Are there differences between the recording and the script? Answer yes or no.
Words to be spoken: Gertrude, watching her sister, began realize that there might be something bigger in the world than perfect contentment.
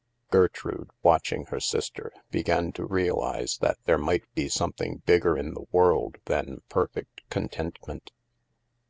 yes